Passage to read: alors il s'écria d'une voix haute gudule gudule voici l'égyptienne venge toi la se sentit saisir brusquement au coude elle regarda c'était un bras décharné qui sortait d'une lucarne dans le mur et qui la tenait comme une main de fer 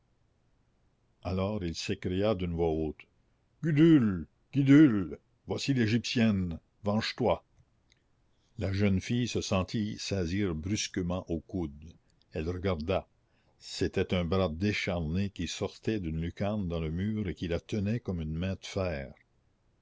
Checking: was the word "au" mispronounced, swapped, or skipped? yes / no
no